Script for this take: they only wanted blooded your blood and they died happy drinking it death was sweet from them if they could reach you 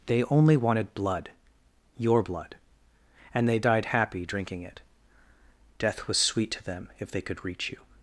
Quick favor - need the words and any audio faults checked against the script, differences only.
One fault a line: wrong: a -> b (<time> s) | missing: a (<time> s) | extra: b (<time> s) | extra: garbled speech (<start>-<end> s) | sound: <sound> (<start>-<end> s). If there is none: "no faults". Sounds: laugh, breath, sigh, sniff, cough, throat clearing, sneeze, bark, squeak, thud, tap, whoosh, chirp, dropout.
wrong: blooded -> blood (0.9 s)
wrong: from -> to (6.5 s)